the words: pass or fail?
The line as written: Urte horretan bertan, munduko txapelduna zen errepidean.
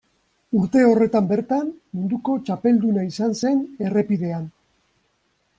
fail